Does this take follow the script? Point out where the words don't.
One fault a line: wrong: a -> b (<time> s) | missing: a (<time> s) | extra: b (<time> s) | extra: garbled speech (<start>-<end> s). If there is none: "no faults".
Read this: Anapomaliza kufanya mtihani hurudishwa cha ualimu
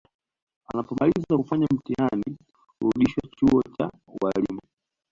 extra: chuo (3.4 s)